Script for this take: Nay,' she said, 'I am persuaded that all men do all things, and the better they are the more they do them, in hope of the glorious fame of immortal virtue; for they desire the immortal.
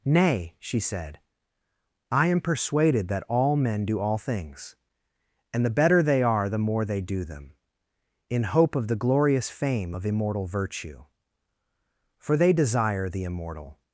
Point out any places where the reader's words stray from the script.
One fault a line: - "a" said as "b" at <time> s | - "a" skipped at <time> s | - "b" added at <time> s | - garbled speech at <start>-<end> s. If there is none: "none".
none